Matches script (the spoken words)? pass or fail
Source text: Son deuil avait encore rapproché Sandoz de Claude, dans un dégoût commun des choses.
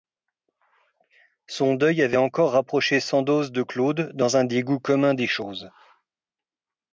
pass